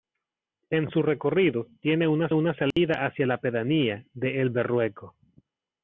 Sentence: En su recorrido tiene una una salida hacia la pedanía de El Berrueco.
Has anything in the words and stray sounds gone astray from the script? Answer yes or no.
yes